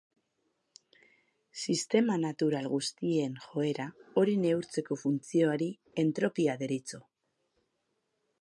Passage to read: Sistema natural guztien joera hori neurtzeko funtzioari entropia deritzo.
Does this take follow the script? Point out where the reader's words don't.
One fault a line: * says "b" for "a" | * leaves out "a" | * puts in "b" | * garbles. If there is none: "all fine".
all fine